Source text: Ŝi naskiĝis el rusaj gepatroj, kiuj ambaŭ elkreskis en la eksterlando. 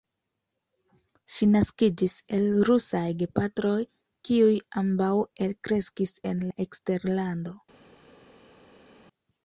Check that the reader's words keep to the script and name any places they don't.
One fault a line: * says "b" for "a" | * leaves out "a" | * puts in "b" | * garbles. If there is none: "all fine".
all fine